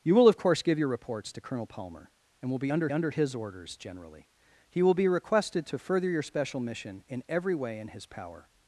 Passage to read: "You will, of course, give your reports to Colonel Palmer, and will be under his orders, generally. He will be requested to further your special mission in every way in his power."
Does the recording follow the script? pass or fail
fail